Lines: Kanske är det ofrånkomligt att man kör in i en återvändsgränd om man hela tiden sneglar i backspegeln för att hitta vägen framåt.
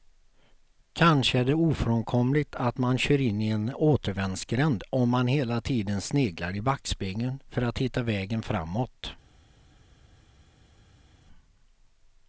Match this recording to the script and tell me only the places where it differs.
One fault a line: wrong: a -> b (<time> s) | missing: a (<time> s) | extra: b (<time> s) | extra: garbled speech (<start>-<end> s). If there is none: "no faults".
no faults